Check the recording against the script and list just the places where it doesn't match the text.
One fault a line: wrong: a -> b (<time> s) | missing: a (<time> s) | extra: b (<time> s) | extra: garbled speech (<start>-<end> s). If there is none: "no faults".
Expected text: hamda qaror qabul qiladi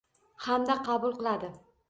missing: qaror (0.8 s)